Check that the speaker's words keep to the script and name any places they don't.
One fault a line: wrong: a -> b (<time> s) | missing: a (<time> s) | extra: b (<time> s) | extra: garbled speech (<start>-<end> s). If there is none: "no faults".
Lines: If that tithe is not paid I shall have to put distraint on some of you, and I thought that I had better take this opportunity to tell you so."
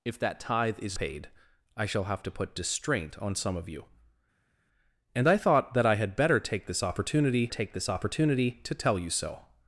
missing: not (1.0 s)
extra: take this opportunity (7.5 s)